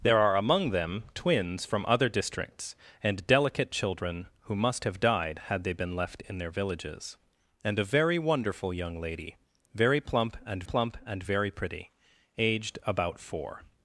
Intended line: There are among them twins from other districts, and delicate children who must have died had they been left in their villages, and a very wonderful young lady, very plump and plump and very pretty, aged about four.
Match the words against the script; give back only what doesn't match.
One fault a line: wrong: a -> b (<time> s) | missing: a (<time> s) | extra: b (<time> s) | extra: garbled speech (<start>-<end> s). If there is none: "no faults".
no faults